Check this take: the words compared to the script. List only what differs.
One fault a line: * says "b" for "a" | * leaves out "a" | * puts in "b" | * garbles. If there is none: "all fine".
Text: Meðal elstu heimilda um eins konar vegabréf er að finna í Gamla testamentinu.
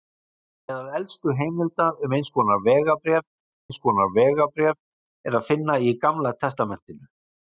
* puts in "eins konar vegabréf"